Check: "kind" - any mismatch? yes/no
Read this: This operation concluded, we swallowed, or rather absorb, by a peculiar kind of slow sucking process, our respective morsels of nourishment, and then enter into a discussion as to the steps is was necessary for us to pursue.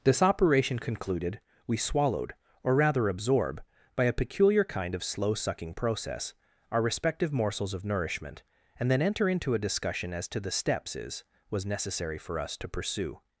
no